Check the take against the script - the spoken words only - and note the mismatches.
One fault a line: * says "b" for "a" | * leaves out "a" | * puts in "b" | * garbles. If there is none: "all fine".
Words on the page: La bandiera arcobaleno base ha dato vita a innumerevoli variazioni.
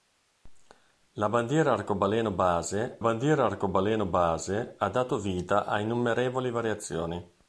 * puts in "bandiera arcobaleno base"